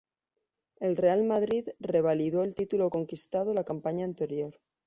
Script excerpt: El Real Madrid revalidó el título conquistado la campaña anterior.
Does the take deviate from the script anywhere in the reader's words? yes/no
no